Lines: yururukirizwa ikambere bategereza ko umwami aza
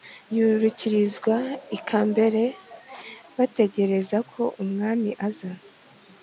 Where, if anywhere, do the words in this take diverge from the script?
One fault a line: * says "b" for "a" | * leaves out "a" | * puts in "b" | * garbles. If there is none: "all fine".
all fine